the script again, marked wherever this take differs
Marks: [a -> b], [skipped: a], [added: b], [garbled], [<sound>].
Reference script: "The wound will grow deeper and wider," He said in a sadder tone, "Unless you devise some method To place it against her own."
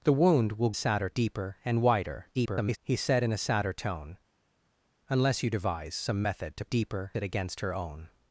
"The wound will [grow -> sadder] deeper and wider," [garbled] He said in a sadder tone, "Unless you devise some method To [place -> deeper] it against her own."